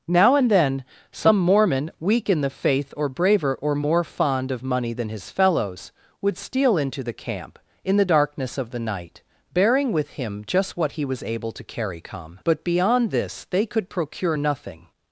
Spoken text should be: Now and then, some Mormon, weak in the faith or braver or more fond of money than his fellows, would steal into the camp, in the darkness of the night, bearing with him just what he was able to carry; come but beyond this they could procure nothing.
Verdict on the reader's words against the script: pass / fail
pass